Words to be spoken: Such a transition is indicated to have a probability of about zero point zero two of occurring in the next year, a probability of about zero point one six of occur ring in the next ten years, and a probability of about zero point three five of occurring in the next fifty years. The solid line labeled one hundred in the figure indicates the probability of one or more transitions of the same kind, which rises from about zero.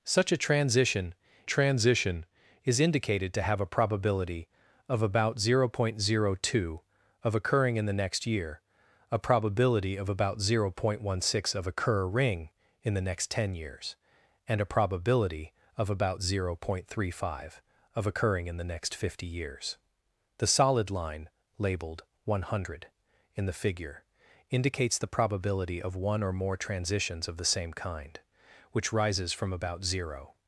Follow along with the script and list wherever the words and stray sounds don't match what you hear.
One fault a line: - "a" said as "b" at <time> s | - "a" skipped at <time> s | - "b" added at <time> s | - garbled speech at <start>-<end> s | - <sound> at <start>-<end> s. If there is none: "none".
- "transition" added at 1.4 s